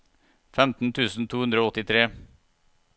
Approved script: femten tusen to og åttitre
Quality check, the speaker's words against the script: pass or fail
fail